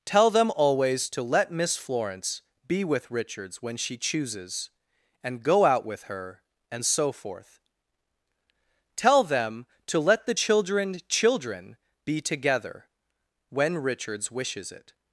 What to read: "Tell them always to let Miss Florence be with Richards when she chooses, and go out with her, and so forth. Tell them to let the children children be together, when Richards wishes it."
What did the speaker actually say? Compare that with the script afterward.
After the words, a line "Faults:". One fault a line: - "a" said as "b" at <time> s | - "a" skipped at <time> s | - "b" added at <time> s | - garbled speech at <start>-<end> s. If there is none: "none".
"Tell them always to let Miss Florence be with Richards when she chooses, and go out with her, and so forth. Tell them to let the children children be together, when Richards wishes it."
Faults:
none